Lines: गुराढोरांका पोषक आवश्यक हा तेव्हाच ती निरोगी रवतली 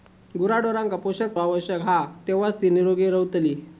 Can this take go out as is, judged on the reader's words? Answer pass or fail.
pass